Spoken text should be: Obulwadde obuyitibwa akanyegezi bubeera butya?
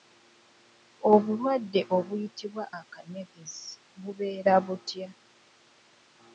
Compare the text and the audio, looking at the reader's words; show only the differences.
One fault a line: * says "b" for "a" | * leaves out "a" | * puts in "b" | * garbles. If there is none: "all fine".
all fine